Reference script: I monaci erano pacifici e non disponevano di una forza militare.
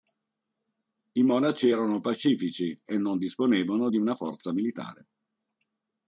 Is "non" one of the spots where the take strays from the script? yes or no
no